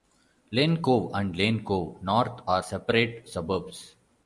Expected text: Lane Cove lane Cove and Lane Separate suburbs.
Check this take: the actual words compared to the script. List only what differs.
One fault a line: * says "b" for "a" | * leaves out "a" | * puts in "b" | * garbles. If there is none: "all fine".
* puts in "and"
* says "North are" for "and Lane"